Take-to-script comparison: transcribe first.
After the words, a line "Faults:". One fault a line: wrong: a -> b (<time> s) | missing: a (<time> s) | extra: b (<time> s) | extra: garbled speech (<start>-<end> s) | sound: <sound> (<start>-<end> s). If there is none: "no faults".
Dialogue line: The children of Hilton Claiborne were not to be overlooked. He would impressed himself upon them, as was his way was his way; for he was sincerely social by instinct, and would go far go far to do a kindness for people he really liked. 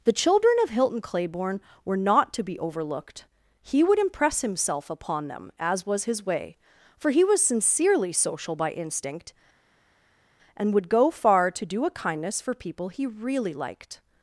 The children of Hilton Claiborne were not to be overlooked. He would impress himself upon them, as was his way; for he was sincerely social by instinct, and would go far to do a kindness for people he really liked.
Faults:
wrong: impressed -> impress (4.0 s)
missing: was his way (6.6 s)
missing: go far (11.5 s)